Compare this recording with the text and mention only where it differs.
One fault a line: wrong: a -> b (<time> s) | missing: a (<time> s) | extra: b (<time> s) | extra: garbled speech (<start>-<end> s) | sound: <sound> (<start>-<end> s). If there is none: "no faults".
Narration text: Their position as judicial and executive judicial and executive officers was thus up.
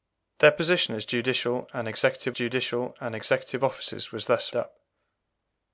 no faults